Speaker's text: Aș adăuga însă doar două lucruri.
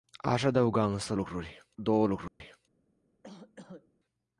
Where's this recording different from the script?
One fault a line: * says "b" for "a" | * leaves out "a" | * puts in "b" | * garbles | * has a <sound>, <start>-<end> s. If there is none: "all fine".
* says "lucruri" for "doar"
* has a dropout, 2.3-2.4 s
* has a cough, 3.2-3.9 s